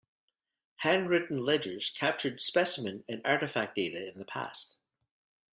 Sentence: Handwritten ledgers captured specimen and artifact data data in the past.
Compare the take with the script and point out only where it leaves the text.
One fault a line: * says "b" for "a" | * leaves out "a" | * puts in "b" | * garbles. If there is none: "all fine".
* leaves out "data"